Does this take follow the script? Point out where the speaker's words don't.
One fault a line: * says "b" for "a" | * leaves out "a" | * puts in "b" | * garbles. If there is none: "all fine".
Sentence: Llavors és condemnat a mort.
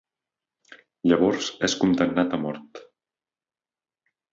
all fine